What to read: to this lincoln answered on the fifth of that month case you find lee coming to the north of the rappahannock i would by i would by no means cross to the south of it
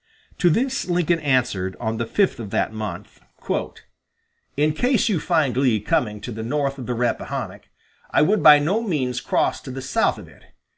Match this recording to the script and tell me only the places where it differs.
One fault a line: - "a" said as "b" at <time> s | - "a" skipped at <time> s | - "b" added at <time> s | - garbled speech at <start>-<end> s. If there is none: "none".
- "in" added at 4.6 s
- "i would by" skipped at 8.6 s